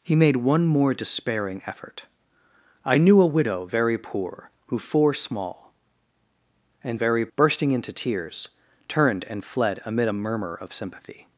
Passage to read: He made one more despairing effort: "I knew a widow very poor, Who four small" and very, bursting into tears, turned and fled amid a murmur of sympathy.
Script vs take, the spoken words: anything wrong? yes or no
no